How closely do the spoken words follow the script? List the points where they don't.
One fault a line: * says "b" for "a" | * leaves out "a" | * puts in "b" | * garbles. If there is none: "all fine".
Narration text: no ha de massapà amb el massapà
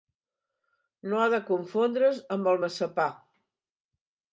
* says "confondre's" for "massapà"